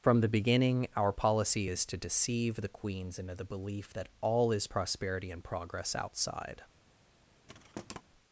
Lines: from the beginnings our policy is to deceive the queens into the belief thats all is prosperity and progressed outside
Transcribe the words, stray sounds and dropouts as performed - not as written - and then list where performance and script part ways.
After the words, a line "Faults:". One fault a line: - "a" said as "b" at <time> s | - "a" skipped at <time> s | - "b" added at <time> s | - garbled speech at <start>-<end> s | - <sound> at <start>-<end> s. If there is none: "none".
from the beginning our policy is to deceive the queens into the belief that all is prosperity and progress outside
Faults:
- "beginnings" said as "beginning" at 0.3 s
- "thats" said as "that" at 3.9 s
- "progressed" said as "progress" at 5.4 s
- thud at 7.5-8.0 s